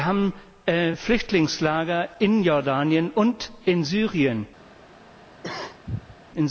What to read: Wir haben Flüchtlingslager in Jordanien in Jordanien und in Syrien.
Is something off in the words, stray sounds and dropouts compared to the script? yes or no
yes